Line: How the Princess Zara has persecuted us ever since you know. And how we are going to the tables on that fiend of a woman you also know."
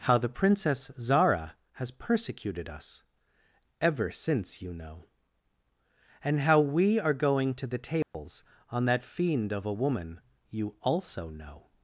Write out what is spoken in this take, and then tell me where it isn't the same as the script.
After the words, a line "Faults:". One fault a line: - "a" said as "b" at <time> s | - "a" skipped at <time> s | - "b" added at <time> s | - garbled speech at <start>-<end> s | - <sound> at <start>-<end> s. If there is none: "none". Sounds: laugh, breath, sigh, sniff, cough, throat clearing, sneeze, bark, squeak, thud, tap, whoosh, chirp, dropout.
How the Princess Zara has persecuted us ever since you know. And how we are going to the tables on that fiend of a woman you also know."
Faults:
- dropout at 8.0-8.1 s